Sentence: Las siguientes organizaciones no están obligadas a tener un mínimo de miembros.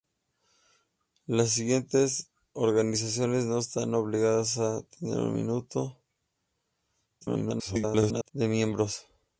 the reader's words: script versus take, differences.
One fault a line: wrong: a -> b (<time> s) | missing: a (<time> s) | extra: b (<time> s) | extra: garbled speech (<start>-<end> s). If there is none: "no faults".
extra: garbled speech (7.2-8.3 s)